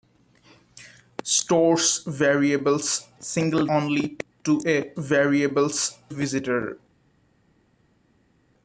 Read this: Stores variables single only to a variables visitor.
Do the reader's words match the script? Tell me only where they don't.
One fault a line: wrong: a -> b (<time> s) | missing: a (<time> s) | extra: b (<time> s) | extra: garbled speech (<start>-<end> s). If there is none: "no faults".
no faults